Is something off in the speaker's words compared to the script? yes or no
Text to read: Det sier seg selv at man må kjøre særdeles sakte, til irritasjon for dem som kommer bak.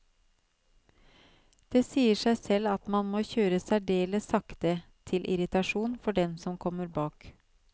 no